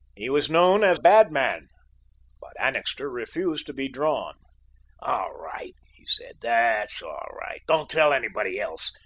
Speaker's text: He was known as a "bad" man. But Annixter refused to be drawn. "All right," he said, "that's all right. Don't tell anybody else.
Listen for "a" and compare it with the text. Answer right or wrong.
wrong